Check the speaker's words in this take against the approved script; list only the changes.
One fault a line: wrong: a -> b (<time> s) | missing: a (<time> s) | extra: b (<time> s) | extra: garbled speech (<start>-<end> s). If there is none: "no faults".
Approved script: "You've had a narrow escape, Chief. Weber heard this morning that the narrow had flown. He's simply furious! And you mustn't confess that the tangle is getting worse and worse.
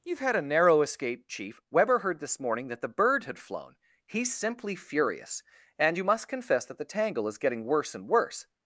wrong: narrow -> bird (2.9 s)
wrong: mustn't -> must (6.0 s)